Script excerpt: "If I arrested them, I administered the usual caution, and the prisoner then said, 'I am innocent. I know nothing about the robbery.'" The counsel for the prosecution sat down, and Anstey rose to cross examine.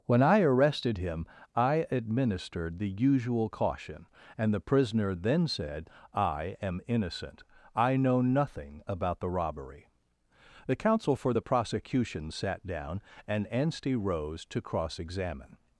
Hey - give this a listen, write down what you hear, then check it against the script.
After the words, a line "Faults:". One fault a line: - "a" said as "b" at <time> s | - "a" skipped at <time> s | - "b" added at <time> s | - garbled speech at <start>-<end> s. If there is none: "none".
"When I arrested him, I administered the usual caution, and the prisoner then said, 'I am innocent. I know nothing about the robbery.'" The counsel for the prosecution sat down, and Anstey rose to cross examine.
Faults:
- "If" said as "When" at 0.1 s
- "them" said as "him" at 1.0 s